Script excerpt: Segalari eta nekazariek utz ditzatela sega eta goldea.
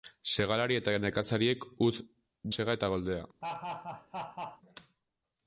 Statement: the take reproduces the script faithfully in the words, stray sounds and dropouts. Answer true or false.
false